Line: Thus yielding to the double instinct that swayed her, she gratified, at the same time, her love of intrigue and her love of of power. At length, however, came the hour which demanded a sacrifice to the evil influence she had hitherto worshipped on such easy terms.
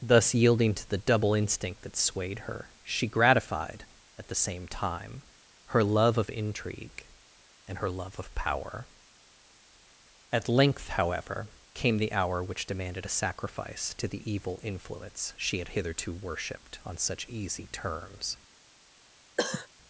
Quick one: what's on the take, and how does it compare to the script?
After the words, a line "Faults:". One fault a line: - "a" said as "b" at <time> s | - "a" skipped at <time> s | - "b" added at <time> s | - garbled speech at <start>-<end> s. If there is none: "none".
Thus yielding to the double instinct that swayed her, she gratified, at the same time, her love of intrigue and her love of power. At length, however, came the hour which demanded a sacrifice to the evil influence she had hitherto worshipped on such easy terms.
Faults:
- "of" skipped at 8.3 s